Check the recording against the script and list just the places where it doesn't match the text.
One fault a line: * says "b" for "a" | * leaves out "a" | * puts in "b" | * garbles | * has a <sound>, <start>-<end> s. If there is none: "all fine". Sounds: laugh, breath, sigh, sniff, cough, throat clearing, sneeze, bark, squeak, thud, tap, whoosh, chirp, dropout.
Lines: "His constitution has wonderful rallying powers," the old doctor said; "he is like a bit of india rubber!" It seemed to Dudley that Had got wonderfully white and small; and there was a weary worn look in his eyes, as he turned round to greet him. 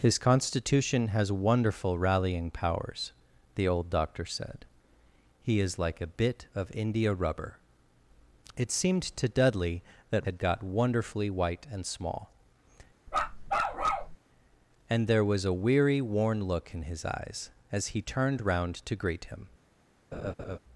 * has a bark, 13.1-14.2 s
* has a laugh, 20.1-20.6 s